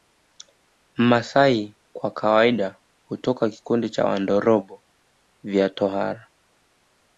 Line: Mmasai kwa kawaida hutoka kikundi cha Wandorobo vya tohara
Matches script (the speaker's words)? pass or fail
pass